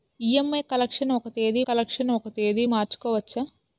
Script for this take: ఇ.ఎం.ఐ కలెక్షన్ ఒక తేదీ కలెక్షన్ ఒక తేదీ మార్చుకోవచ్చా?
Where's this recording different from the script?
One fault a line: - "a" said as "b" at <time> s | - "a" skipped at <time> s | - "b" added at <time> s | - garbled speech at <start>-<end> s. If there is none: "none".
none